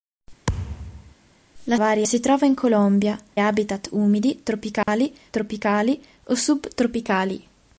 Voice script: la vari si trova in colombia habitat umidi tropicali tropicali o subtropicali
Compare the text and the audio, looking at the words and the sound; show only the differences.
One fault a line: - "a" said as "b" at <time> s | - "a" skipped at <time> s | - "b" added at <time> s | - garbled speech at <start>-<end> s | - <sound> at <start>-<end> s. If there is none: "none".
- thud at 0.5-1.1 s
- dropout at 4.8-4.9 s